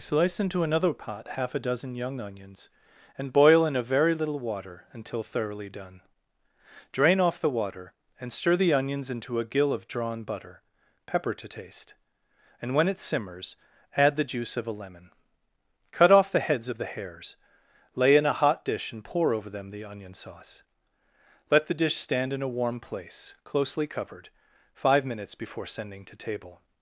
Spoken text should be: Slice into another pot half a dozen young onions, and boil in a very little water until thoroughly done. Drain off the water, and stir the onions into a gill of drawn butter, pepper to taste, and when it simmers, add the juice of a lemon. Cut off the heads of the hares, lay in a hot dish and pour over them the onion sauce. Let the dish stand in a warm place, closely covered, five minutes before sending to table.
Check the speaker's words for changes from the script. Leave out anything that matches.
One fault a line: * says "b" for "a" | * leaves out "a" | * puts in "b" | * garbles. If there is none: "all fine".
all fine